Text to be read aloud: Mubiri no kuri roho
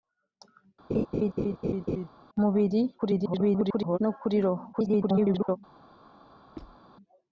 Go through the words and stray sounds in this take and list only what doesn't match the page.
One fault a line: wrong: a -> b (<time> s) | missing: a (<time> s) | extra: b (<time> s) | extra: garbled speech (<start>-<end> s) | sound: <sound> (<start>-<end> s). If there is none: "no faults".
sound: laugh (0.9-2.1 s)
extra: garbled speech (3.0-4.0 s)
extra: garbled speech (4.7-5.6 s)
sound: squeak (6.6-6.8 s)